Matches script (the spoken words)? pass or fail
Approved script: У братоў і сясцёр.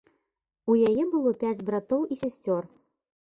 fail